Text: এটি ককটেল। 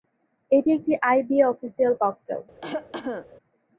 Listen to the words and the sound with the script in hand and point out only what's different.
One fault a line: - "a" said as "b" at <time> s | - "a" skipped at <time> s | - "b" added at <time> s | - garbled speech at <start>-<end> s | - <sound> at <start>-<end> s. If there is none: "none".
- "একটি আইবিএ অফিসিয়াল" added at 0.8 s
- cough at 2.6-3.3 s